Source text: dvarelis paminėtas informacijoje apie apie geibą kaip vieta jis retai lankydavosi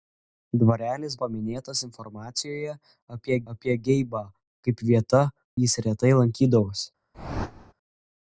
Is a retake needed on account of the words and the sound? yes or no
yes